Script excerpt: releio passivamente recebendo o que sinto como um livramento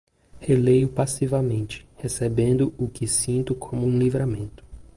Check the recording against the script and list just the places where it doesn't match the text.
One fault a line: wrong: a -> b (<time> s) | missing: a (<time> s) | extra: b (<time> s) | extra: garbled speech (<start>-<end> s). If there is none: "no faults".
no faults